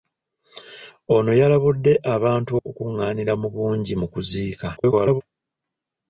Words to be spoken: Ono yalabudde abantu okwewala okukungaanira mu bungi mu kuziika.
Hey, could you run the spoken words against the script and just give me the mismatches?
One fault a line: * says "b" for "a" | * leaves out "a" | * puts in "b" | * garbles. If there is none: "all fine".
* leaves out "okwewala"
* garbles